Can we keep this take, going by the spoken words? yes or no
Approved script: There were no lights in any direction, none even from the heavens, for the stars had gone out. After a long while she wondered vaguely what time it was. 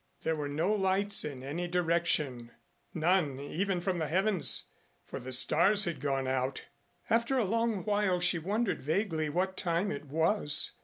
yes